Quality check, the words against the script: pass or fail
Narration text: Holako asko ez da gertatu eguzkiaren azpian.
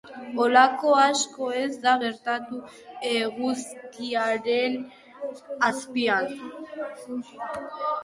pass